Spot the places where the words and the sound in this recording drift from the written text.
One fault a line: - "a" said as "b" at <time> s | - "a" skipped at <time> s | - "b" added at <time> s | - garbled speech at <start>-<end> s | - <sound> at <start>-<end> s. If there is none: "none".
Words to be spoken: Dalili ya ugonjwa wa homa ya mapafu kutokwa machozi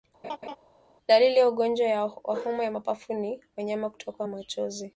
- laugh at 0.2-0.6 s
- "ni wanyama" added at 3.1 s